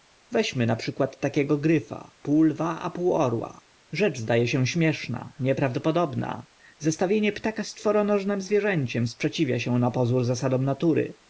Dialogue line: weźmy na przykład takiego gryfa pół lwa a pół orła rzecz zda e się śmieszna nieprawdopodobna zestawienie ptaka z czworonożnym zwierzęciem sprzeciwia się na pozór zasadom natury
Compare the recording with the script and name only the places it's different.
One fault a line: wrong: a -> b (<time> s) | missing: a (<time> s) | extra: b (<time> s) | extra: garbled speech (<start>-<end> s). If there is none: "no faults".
no faults